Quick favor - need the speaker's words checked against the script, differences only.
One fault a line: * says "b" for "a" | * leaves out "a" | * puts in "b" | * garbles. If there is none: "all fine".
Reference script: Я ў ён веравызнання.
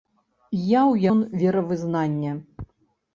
all fine